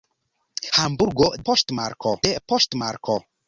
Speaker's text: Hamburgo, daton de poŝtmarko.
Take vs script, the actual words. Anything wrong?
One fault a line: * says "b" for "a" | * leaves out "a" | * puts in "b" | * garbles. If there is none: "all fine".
* says "poŝtmarko" for "daton"